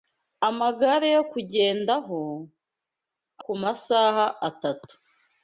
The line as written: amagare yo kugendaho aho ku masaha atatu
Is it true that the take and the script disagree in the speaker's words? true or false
true